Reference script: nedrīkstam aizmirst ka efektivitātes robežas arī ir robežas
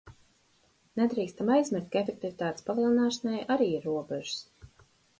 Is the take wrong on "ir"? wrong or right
right